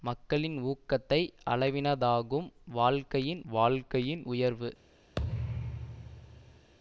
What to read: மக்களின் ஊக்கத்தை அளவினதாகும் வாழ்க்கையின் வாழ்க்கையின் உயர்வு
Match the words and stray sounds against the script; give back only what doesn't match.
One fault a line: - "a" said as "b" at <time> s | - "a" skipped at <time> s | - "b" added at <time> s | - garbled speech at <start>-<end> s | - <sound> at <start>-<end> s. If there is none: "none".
- thud at 5.2-6.7 s